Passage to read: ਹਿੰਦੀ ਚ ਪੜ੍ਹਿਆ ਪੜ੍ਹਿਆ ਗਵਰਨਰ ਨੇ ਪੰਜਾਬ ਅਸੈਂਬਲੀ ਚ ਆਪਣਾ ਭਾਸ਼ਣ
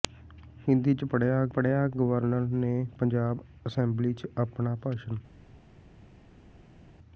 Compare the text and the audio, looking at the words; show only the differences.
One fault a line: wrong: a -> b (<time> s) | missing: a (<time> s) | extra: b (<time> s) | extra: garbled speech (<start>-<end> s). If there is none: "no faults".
no faults